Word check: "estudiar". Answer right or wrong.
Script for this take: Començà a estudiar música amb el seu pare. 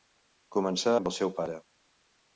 wrong